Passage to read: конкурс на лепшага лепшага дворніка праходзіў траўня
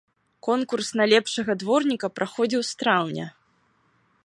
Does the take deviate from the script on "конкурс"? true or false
false